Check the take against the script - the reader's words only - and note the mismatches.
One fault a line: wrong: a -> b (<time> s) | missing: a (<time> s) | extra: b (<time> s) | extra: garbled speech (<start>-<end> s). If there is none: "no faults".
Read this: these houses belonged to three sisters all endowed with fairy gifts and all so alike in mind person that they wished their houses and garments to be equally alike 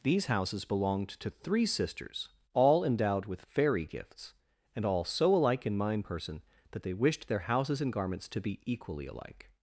no faults